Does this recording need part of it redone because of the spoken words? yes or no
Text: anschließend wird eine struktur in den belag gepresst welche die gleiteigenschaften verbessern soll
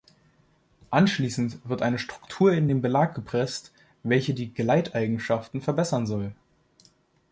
no